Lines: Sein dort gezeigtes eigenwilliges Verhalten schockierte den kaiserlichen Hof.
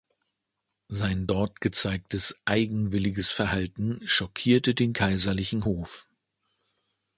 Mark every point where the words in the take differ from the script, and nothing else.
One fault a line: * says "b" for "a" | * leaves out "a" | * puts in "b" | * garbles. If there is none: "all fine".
all fine